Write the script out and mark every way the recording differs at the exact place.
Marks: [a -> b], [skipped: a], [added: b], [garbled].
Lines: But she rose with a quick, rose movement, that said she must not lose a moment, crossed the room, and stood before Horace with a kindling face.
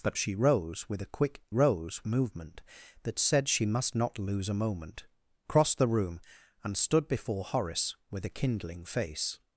But she rose with a quick, rose movement, that said she must not lose a moment, crossed the room, and stood before Horace with a kindling face.